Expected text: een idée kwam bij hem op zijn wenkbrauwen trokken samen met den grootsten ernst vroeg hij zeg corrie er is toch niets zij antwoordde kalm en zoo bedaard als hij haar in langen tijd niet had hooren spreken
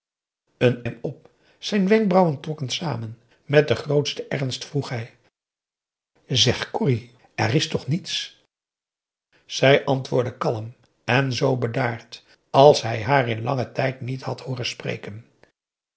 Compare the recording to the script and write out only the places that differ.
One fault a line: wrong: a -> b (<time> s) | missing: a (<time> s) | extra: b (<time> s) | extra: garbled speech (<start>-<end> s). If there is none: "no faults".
missing: idée kwam bij (0.8 s)